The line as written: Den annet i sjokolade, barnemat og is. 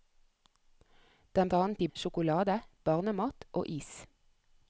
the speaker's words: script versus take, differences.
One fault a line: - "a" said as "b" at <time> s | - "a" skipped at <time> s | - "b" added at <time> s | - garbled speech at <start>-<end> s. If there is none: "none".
none